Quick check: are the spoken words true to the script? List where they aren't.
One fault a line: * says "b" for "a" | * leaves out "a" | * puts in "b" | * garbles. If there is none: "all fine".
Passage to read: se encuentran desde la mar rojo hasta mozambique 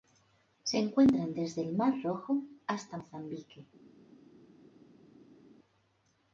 * says "el" for "la"